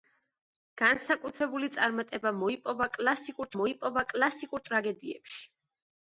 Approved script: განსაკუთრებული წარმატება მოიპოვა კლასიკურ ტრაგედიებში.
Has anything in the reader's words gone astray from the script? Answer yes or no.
yes